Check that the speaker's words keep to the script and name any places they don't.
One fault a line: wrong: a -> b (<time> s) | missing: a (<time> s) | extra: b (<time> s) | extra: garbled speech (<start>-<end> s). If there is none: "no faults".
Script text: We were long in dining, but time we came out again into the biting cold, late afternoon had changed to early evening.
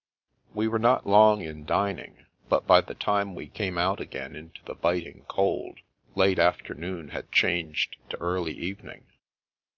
extra: not (0.8 s)
extra: by the (2.6 s)